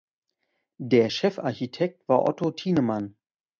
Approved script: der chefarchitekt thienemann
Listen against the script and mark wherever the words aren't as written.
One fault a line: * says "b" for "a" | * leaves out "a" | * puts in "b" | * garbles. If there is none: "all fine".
* puts in "war otto"